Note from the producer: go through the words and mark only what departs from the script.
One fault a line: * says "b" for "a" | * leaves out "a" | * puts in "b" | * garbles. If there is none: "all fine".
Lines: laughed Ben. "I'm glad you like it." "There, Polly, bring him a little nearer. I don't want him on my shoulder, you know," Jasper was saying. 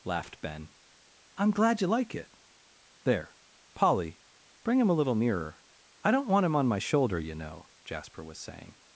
all fine